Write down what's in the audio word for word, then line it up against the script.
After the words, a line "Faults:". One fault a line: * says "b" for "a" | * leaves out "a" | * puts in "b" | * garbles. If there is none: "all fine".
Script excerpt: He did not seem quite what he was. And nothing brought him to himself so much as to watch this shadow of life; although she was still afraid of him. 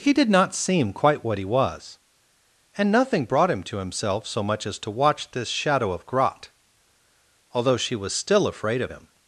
He did not seem quite what he was. And nothing brought him to himself so much as to watch this shadow of grot; although she was still afraid of him.
Faults:
* says "grot" for "life"